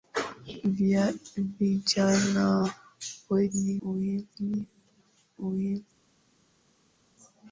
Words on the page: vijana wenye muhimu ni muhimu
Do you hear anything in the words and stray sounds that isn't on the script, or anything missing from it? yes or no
no